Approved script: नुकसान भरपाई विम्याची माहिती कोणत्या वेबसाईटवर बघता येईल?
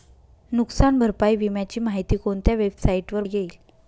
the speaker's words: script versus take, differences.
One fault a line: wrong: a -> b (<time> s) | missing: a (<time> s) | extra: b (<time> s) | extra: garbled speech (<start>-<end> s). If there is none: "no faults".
missing: बघता (3.2 s)